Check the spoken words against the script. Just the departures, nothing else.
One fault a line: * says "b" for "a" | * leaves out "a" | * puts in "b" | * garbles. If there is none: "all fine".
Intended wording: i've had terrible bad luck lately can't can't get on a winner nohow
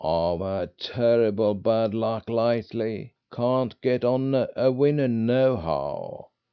* leaves out "can't"